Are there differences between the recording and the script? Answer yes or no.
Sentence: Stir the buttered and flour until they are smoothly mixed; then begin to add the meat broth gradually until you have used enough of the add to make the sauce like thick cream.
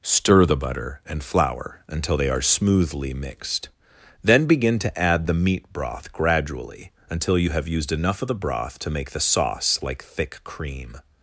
yes